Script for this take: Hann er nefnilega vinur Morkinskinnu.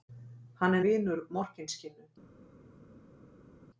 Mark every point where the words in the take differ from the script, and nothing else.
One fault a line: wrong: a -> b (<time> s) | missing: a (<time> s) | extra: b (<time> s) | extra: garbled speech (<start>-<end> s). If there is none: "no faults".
missing: nefnilega (0.8 s)